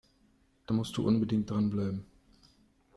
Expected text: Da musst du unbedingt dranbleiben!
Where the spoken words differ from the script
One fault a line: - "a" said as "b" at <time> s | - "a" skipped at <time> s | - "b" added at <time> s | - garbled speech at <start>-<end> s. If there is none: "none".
none